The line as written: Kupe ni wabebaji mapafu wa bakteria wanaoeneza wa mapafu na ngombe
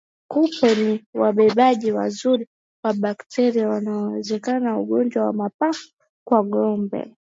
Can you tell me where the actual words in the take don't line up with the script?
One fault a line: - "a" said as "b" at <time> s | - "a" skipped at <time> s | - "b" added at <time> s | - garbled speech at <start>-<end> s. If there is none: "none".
- "mapafu" said as "wazuri" at 1.9 s
- "ugonjwa" added at 4.8 s
- "na" said as "kwa" at 6.3 s